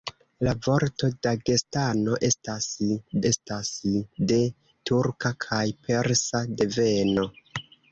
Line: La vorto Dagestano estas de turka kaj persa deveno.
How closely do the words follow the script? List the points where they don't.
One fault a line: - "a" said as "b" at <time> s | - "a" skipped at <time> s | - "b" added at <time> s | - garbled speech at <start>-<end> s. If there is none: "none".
- "estas" added at 3.3 s